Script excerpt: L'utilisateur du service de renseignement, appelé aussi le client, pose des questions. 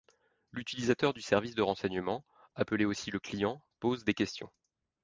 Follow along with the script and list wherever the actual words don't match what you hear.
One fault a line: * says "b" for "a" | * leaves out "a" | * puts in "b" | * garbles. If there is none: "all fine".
all fine